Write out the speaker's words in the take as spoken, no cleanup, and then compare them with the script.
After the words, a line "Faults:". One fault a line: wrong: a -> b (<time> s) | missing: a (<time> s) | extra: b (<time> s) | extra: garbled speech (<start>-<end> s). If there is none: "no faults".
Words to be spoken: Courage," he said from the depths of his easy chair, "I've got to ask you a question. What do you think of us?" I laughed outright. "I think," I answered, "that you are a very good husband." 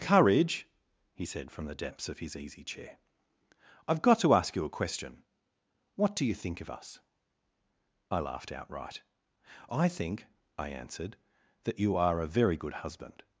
Courage," he said from the depths of his easy chair, "I've got to ask you a question. What do you think of us?" I laughed outright. "I think," I answered, "that you are a very good husband."
Faults:
no faults